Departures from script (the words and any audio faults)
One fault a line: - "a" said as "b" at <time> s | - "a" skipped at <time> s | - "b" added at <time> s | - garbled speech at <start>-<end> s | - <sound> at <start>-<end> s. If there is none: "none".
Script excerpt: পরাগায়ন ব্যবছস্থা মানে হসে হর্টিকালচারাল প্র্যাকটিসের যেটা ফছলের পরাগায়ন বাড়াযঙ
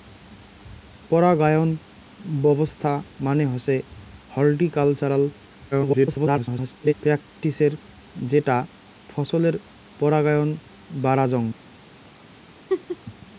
- garbled speech at 5.7-6.9 s
- laugh at 12.7-13.0 s